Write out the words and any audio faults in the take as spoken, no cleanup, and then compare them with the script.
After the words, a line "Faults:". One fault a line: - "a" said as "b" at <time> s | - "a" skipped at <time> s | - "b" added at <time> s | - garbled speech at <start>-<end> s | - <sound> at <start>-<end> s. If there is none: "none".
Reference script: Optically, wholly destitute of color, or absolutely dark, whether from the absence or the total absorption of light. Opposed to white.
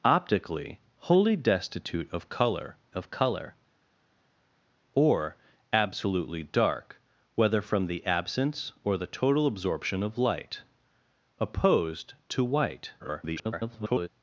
Optically, wholly destitute of color of color, or absolutely dark, whether from the absence or the total absorption of light. Opposed to white. [garbled]
Faults:
- "of color" added at 2.9 s
- garbled speech at 13.0-14.1 s